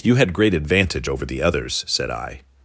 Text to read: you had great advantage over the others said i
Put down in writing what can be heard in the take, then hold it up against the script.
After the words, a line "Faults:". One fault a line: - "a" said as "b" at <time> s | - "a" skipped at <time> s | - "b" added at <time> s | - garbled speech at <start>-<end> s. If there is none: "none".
you had great advantage over the others said i
Faults:
none